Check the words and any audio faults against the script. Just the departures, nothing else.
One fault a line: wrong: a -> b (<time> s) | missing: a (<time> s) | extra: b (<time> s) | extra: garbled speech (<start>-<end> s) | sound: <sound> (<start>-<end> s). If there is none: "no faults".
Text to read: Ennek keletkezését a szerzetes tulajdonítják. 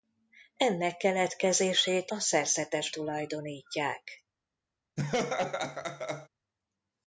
sound: laugh (5.0-6.3 s)